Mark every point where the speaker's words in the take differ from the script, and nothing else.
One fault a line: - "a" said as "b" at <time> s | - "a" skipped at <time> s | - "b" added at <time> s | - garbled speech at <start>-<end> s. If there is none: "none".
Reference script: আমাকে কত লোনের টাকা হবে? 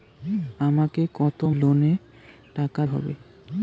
none